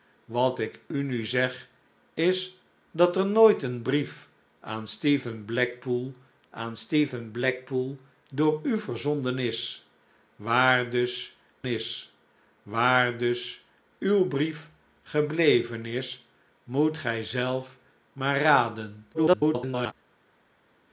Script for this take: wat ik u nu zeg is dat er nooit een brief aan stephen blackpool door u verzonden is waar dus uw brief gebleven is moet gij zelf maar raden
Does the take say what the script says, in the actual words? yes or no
no